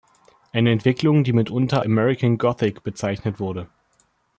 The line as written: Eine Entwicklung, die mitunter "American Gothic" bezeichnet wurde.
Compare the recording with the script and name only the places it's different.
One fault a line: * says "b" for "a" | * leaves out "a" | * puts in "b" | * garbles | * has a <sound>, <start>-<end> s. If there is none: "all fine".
all fine